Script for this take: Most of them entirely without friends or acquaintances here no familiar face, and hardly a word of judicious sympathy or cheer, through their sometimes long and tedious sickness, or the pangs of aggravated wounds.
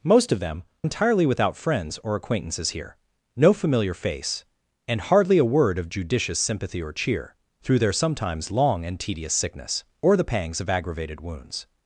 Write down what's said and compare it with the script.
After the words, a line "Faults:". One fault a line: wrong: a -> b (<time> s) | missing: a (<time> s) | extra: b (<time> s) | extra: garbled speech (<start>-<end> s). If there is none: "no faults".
Most of them entirely without friends or acquaintances here no familiar face, and hardly a word of judicious sympathy or cheer, through their sometimes long and tedious sickness, or the pangs of aggravated wounds.
Faults:
no faults